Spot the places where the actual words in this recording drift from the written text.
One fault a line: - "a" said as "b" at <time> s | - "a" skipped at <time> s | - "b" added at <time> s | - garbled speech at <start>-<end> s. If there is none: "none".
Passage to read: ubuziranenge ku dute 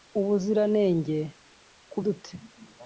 none